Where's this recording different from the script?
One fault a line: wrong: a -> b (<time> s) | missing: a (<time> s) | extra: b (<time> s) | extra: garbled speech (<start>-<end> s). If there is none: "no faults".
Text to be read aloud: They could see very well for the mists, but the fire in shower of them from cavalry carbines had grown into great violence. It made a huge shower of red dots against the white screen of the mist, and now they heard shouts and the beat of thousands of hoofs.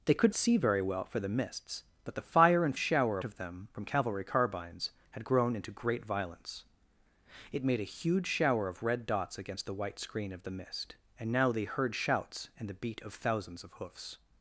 no faults